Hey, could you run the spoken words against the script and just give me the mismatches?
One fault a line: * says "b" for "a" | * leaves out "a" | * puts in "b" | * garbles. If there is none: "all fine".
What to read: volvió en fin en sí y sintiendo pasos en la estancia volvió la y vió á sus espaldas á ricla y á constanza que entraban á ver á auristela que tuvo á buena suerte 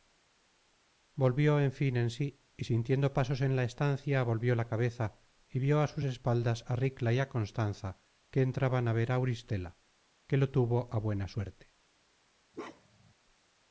* puts in "cabeza"
* puts in "lo"